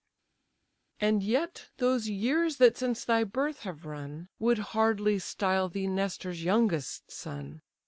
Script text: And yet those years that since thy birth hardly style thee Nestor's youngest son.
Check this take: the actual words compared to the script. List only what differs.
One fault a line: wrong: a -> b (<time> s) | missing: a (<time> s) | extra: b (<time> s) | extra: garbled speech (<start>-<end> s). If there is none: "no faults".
extra: have run Would (3.6 s)